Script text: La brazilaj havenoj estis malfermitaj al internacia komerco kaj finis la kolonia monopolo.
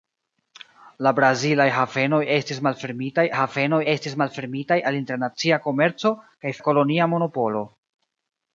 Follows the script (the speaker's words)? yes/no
no